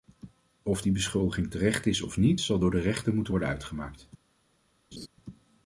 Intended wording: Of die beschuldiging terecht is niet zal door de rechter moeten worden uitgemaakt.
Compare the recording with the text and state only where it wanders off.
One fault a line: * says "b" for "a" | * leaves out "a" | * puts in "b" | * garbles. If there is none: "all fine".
* puts in "of"